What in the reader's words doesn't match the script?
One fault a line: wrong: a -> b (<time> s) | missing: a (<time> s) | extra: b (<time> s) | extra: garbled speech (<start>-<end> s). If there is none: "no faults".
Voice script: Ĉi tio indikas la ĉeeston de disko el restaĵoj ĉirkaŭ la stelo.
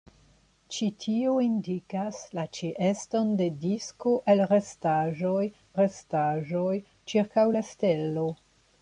extra: restaĵoj (5.8 s)